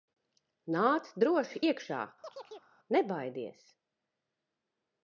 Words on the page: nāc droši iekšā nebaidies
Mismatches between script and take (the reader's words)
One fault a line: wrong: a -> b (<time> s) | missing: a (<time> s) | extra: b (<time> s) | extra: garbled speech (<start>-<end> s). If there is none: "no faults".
no faults